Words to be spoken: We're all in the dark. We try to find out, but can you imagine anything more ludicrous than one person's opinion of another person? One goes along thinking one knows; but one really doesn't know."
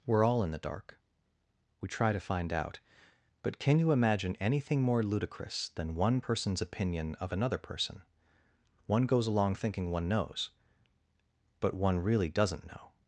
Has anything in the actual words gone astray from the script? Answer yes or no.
no